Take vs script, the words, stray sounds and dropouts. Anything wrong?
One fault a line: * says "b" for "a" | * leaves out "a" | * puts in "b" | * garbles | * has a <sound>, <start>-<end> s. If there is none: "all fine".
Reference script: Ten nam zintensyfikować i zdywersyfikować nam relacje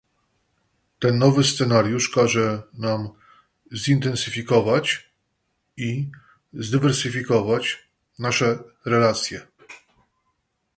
* puts in "nowy scenariusz każe"
* says "nasze" for "nam"